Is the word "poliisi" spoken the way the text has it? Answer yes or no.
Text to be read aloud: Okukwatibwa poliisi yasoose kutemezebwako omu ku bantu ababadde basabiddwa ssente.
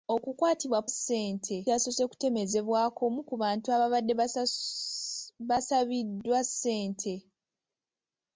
no